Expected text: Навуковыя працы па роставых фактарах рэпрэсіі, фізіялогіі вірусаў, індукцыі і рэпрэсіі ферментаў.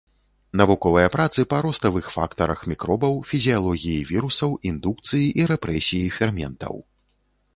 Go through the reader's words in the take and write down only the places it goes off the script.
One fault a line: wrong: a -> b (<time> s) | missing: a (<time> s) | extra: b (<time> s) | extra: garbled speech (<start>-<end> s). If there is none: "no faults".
wrong: рэпрэсіі -> мікробаў (2.7 s)